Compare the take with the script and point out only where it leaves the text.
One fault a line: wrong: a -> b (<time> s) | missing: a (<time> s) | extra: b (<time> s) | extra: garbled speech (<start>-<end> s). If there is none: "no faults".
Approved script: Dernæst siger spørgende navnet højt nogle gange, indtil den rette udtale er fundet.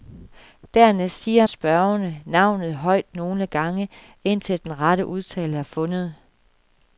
no faults